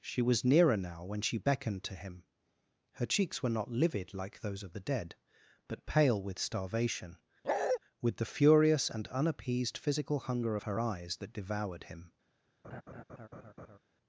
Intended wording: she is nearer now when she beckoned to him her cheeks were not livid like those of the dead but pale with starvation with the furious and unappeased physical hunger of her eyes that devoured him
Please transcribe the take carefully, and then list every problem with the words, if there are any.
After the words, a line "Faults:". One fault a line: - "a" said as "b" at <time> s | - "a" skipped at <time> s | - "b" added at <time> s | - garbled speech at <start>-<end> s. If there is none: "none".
she was nearer now when she beckoned to him her cheeks were not livid like those of the dead but pale with starvation with the furious and unappeased physical hunger of her eyes that devoured him
Faults:
- "is" said as "was" at 0.2 s